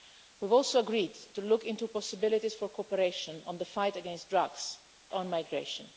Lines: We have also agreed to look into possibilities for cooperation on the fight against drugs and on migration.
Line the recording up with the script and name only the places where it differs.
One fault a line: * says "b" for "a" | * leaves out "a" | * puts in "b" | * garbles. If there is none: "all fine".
* leaves out "and"